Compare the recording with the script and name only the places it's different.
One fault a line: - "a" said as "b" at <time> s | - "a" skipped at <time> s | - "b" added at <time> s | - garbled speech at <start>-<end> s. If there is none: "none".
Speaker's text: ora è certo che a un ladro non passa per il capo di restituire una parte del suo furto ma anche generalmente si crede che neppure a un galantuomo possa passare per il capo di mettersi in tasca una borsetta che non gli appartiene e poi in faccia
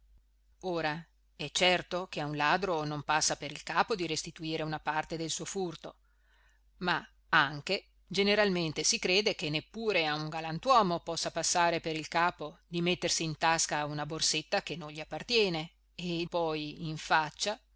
none